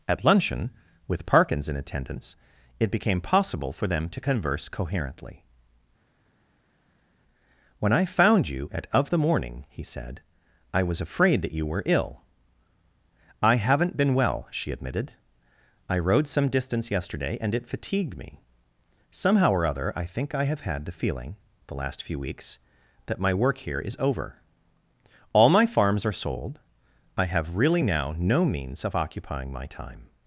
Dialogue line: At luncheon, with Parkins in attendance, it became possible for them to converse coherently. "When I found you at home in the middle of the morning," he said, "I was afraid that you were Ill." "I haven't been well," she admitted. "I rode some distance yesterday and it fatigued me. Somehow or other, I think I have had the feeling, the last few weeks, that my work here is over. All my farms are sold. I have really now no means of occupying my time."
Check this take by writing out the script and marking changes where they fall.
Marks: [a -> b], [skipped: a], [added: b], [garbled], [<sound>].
At luncheon, with Parkins in attendance, it became possible for them to converse coherently. "When I found you at [skipped: home in the middle] of the morning," he said, "I was afraid that you were Ill." "I haven't been well," she admitted. "I rode some distance yesterday and it fatigued me. Somehow or other, I think I have had the feeling, the last few weeks, that my work here is over. All my farms are sold. I have really now no means of occupying my time."